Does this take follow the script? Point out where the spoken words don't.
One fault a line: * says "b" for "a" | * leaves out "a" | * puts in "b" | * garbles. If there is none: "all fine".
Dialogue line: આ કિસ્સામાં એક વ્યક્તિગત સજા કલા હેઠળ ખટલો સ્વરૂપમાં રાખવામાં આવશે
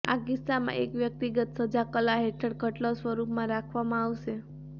all fine